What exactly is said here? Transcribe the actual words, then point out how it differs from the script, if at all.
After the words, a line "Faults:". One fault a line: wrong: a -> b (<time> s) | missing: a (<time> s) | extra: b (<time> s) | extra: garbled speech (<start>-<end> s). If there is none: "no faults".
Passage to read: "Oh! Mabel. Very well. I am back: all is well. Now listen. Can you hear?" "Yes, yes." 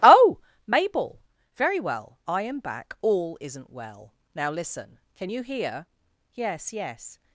"Oh! Mabel. Very well. I am back: all isn't well. Now listen. Can you hear?" "Yes, yes."
Faults:
wrong: is -> isn't (3.4 s)